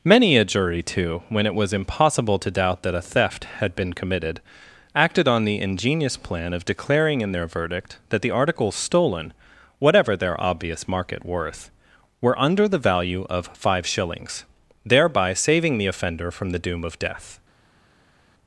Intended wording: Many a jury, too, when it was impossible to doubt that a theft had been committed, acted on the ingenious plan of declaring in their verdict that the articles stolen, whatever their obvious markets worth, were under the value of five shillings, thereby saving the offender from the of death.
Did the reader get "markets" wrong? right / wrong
wrong